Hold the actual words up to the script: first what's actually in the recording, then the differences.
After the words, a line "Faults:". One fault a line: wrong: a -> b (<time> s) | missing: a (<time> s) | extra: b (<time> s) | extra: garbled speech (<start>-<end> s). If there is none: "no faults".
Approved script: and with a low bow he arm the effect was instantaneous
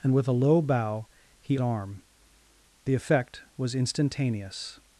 and with a low bow he arm the effect was instantaneous
Faults:
no faults